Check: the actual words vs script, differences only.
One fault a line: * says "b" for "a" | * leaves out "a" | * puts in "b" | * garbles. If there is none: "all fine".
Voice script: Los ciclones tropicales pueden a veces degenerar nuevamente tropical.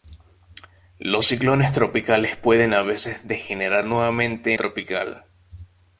all fine